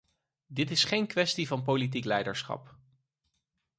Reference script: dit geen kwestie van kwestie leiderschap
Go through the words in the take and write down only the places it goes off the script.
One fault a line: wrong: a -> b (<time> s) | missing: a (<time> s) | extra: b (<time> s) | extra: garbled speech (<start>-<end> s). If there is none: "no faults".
extra: is (0.7 s)
wrong: kwestie -> politiek (1.6 s)